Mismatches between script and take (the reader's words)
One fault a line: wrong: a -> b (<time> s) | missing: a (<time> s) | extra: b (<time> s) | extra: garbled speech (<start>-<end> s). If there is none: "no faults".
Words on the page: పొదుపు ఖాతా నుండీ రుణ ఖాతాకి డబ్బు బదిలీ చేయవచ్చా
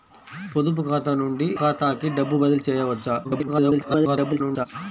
missing: రుణ (1.5 s)
extra: garbled speech (3.2-4.7 s)